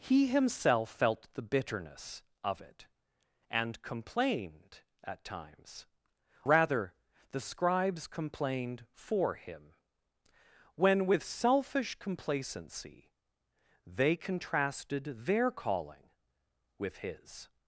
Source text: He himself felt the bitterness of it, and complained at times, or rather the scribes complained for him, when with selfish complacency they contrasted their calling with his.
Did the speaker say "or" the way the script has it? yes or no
no